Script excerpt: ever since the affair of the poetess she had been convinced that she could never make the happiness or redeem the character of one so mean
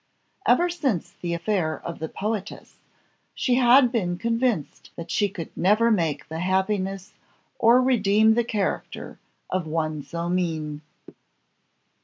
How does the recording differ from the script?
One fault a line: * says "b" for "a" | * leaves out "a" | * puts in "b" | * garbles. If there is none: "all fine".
all fine